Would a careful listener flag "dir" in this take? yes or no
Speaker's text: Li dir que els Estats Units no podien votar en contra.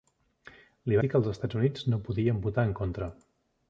no